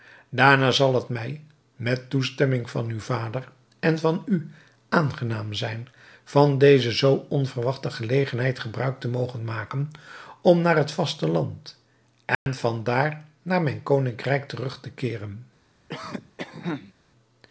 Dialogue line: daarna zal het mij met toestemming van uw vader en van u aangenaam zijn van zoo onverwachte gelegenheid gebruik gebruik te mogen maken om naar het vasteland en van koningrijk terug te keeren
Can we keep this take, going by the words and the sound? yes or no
no